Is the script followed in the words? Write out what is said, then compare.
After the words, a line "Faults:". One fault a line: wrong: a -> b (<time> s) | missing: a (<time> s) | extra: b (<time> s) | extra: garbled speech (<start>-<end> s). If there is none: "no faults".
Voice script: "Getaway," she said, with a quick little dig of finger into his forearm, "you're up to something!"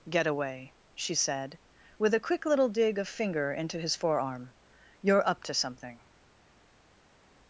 "Getaway," she said, with a quick little dig of finger into his forearm, "you're up to something!"
Faults:
no faults